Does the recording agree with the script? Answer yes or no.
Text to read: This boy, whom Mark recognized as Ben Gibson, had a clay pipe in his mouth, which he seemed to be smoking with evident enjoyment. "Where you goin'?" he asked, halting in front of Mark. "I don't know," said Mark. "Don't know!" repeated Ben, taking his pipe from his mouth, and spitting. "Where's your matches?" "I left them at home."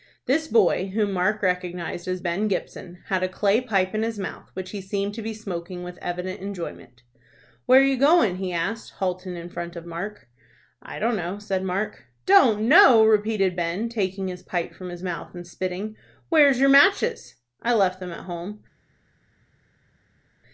yes